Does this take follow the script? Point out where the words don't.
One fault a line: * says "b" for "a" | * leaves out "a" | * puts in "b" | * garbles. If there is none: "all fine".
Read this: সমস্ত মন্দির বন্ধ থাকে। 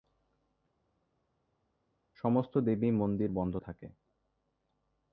* puts in "দেবী"